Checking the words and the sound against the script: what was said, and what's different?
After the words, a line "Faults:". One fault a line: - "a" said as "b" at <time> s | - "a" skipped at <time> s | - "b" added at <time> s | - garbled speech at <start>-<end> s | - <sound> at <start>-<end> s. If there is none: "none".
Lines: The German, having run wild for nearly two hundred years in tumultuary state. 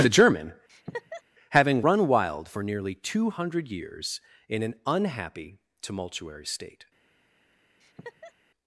The German, having run wild for nearly two hundred years in an unhappy tumultuary state.
Faults:
- laugh at 0.7-1.2 s
- "an unhappy" added at 4.6 s
- laugh at 7.8-8.3 s